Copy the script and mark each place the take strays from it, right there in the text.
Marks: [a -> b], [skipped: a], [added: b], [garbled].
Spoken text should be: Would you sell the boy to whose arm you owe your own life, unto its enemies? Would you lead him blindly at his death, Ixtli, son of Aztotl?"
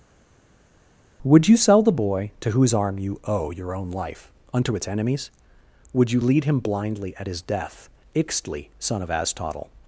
Would you sell the boy to whose arm you owe your own life, unto its enemies? Would you lead him blindly at his death, Ixtli, son of Aztotl?"